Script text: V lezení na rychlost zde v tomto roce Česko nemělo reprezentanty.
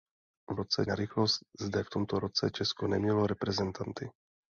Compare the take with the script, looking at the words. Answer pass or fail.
fail